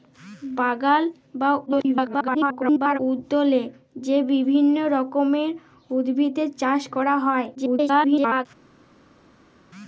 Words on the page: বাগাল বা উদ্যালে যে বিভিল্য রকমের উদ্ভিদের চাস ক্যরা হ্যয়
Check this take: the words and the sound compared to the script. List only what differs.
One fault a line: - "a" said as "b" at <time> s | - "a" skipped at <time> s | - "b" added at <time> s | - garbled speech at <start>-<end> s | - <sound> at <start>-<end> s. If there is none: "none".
- garbled speech at 1.7-3.0 s
- garbled speech at 7.5-8.5 s